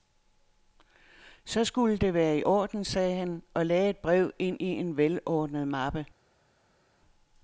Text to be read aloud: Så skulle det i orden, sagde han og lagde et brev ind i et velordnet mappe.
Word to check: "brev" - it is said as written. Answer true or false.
true